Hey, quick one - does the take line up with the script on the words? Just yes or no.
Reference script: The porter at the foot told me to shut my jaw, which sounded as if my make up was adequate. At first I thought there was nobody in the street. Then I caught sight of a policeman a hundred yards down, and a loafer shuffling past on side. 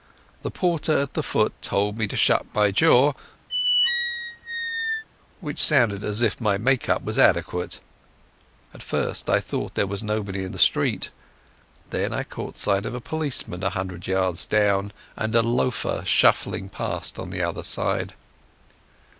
no